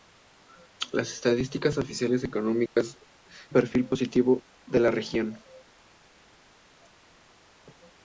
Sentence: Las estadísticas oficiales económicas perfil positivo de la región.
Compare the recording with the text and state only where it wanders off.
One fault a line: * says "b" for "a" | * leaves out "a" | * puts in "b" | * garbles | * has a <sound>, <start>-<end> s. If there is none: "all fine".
* has a dropout, 2.7-2.8 s